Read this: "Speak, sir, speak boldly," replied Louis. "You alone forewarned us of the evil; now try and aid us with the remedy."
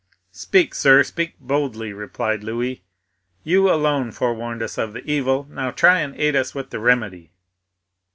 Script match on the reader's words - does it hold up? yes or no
yes